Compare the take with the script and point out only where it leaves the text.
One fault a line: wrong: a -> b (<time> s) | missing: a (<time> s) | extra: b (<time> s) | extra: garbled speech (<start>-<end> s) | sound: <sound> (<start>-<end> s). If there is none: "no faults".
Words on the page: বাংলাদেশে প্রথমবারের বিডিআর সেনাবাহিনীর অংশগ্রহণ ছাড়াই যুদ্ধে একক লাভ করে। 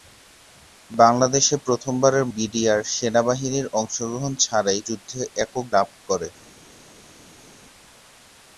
no faults